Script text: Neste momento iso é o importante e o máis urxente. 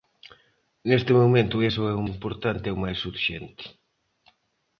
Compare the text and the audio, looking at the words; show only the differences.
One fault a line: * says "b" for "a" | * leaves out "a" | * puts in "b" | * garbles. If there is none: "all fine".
all fine